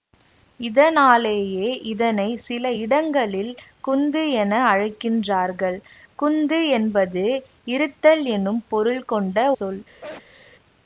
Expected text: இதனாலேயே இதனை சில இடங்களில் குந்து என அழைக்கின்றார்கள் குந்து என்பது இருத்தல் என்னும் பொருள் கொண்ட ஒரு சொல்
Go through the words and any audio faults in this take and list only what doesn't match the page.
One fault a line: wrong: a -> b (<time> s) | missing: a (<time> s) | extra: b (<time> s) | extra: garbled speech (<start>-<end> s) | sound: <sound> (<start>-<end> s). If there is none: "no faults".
missing: ஒரு (9.5 s)
sound: sneeze (10.0-10.5 s)